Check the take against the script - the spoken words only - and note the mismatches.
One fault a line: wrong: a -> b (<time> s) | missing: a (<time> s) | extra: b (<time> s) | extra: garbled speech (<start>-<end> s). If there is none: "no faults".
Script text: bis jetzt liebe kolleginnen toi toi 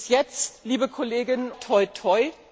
no faults